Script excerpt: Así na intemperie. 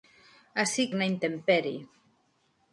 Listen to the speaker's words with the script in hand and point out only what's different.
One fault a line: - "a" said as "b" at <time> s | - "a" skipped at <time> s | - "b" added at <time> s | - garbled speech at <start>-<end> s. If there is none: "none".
none